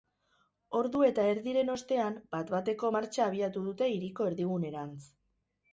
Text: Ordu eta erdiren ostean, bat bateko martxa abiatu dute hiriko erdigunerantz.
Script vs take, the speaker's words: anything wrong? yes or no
no